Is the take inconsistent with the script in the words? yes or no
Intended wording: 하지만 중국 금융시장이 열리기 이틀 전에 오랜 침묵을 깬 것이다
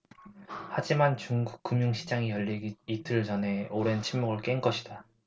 no